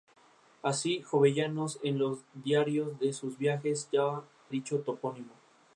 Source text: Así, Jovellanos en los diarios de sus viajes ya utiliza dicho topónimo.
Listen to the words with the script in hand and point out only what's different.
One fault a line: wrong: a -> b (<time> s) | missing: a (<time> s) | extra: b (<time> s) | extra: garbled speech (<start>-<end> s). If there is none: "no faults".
missing: utiliza (4.2 s)